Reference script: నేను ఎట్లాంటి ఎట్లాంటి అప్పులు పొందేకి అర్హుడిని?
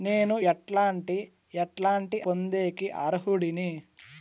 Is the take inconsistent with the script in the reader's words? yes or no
yes